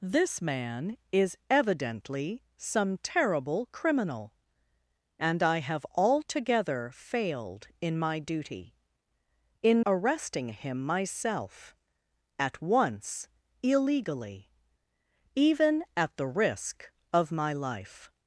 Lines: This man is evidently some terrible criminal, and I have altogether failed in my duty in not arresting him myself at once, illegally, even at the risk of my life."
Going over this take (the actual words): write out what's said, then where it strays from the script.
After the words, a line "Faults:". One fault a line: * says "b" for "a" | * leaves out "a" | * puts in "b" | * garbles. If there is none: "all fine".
This man is evidently some terrible criminal, and I have altogether failed in my duty in arresting him myself at once, illegally, even at the risk of my life."
Faults:
* leaves out "not"